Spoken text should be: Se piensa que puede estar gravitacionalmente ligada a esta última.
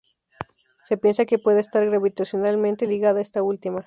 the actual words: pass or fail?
pass